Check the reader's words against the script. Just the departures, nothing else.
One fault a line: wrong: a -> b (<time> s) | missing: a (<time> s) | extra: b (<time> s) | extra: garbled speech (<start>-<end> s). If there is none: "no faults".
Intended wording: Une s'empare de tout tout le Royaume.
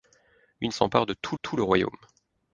no faults